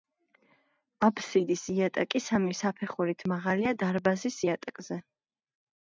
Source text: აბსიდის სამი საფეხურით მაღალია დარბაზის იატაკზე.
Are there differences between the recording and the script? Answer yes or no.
yes